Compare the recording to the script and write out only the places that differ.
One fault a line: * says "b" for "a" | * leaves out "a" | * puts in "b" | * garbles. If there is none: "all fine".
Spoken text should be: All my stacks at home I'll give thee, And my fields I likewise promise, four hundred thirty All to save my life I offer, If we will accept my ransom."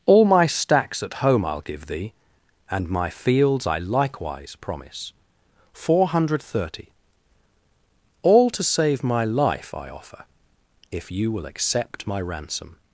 * says "you" for "we"